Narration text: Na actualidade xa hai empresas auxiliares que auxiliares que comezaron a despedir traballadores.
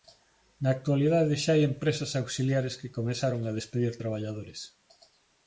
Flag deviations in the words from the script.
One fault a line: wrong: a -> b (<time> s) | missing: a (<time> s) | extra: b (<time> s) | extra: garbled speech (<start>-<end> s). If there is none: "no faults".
missing: auxiliares que (2.9 s)